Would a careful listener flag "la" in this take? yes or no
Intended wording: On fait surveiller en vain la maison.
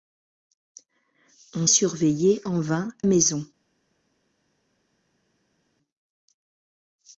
yes